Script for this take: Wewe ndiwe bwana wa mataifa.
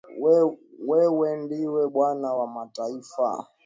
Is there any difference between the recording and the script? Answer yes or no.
no